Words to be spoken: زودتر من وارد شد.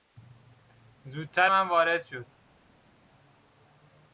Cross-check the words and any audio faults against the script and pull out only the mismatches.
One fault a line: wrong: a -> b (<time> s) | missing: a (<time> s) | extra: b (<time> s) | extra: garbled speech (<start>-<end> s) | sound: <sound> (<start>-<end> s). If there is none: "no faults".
no faults